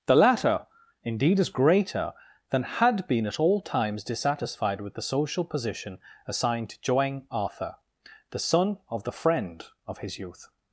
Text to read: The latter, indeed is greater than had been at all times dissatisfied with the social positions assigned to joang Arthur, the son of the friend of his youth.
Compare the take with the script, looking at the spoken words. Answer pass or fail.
fail